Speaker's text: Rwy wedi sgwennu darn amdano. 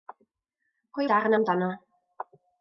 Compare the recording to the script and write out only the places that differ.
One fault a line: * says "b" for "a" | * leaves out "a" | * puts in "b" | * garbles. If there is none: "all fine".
* leaves out "wedi sgwennu"